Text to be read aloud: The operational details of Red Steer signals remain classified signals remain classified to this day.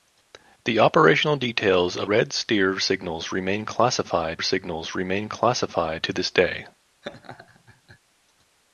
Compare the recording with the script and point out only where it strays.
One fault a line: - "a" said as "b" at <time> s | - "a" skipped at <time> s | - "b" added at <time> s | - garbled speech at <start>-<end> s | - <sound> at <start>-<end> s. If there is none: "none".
- laugh at 7.0-8.0 s